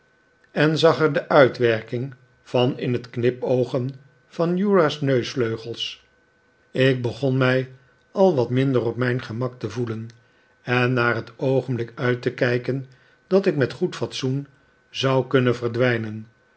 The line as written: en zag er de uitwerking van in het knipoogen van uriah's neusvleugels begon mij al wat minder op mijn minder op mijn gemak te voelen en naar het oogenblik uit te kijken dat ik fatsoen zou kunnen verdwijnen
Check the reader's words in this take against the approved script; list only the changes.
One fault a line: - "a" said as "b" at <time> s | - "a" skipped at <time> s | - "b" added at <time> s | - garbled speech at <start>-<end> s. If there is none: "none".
- "ik" added at 6.7 s
- "minder op mijn" skipped at 9.2 s
- "met goed" added at 13.6 s